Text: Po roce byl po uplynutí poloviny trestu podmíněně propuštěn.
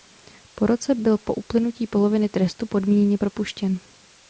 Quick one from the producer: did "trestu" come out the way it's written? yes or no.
yes